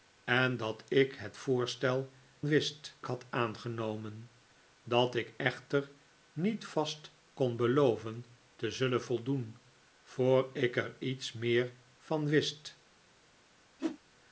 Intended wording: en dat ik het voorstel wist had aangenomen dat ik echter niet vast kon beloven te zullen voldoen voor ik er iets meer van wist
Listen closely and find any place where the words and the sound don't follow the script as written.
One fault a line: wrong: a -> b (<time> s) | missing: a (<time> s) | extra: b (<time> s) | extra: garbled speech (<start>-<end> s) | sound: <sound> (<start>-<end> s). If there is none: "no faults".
sound: whoosh (13.8-14.0 s)